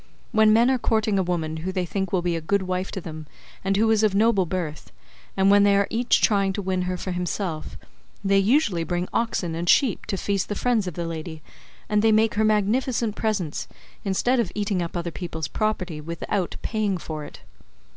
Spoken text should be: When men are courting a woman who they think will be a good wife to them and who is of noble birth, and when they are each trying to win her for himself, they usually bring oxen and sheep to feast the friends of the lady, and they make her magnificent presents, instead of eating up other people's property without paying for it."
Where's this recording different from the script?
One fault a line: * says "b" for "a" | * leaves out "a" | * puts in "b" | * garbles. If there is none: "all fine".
all fine